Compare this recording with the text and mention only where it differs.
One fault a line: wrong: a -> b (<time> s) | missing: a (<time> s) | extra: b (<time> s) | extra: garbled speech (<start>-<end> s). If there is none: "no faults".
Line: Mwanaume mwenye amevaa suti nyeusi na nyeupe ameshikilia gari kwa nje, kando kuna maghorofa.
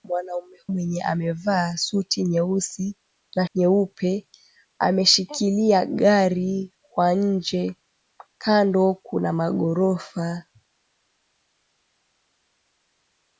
no faults